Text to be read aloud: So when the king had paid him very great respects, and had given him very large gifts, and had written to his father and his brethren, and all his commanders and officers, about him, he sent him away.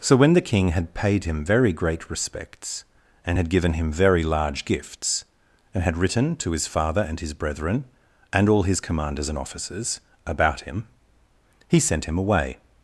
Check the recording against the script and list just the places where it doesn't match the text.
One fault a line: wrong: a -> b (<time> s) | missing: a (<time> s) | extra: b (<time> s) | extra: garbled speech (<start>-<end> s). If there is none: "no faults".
no faults